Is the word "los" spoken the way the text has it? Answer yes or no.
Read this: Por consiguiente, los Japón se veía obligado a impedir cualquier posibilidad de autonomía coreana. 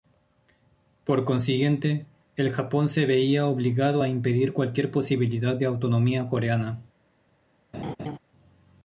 no